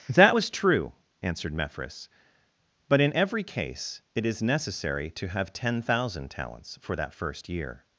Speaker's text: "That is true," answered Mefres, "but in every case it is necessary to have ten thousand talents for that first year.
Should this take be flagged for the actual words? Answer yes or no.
yes